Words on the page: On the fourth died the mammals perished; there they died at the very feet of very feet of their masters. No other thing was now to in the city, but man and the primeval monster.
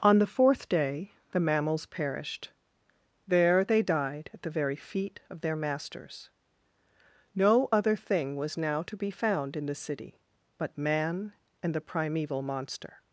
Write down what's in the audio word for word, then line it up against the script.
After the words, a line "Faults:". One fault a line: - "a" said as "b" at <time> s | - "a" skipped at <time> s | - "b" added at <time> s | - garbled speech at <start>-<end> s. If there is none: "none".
On the fourth day the mammals perished; there they died at the very feet of their masters. No other thing was now to be found in the city, but man and the primeval monster.
Faults:
- "died" said as "day" at 0.7 s
- "very feet of" skipped at 5.4 s
- "be found" added at 8.9 s